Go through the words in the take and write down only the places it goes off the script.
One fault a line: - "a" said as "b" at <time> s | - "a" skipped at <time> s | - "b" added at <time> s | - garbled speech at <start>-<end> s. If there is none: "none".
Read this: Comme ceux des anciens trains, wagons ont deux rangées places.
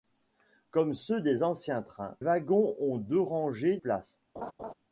none